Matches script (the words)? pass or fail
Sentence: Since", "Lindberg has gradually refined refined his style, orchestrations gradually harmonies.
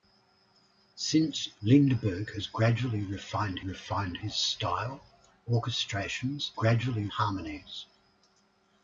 pass